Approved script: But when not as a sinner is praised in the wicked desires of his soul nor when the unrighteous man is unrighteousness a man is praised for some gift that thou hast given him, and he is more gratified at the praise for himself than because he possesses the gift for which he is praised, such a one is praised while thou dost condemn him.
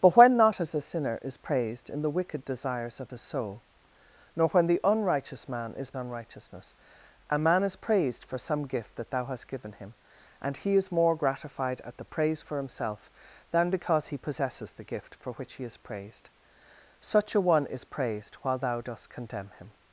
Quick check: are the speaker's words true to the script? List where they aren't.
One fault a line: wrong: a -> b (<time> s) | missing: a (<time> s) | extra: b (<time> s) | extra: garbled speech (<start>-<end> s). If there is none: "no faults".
no faults